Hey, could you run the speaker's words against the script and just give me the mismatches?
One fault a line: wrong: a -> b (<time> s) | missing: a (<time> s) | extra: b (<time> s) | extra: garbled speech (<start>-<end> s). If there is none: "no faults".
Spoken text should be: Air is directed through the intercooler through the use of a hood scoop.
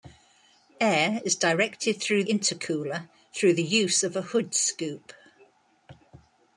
missing: the (2.2 s)